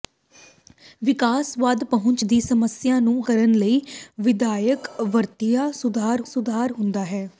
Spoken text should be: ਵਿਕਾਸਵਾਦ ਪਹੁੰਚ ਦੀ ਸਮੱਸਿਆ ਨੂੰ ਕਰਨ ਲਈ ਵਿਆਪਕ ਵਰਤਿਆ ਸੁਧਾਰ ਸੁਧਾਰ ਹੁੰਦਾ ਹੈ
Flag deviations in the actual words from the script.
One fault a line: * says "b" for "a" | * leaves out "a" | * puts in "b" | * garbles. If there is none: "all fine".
all fine